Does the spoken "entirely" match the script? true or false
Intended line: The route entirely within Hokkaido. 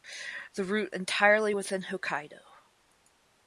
true